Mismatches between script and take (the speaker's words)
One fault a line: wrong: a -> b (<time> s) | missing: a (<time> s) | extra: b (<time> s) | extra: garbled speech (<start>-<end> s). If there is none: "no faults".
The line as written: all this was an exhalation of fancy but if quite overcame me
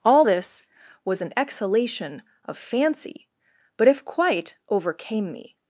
no faults